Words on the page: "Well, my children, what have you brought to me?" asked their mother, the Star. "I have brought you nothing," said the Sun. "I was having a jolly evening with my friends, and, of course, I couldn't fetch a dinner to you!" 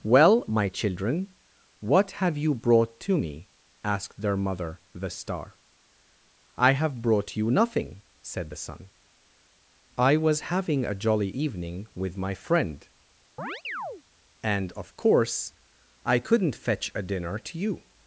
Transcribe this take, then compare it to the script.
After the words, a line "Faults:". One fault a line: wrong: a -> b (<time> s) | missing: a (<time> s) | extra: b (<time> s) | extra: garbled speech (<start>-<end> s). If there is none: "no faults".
"Well, my children, what have you brought to me?" asked their mother, the Star. "I have brought you nothing," said the Sun. "I was having a jolly evening with my friend, and, of course, I couldn't fetch a dinner to you!"
Faults:
wrong: friends -> friend (12.3 s)